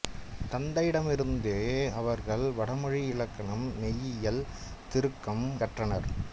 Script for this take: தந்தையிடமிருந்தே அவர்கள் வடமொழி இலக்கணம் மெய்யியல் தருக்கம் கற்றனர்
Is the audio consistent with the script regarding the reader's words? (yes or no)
yes